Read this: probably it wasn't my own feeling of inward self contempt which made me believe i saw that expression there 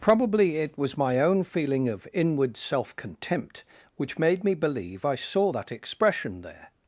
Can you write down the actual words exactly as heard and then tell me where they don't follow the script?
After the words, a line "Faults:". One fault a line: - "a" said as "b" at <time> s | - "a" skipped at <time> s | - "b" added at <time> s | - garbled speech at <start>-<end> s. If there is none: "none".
probably it was my own feeling of inward self contempt which made me believe i saw that expression there
Faults:
- "wasn't" said as "was" at 0.8 s